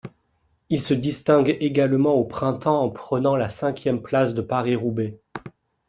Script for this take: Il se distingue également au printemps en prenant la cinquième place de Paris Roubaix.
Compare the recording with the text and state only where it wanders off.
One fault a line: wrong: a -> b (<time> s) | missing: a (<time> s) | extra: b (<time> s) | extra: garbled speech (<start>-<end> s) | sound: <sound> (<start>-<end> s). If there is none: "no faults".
no faults